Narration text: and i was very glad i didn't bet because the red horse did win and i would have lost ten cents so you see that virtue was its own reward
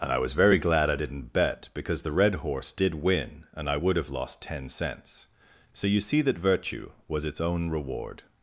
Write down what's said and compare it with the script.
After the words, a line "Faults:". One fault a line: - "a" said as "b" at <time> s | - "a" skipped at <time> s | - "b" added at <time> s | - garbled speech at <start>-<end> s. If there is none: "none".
and i was very glad i didn't bet because the red horse did win and i would have lost ten cents so you see that virtue was its own reward
Faults:
none